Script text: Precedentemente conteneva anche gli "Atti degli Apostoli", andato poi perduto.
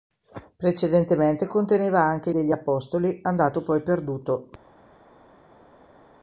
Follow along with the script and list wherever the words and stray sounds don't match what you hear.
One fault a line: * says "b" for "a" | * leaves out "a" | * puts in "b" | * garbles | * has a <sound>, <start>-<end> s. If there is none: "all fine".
* leaves out "gli Atti"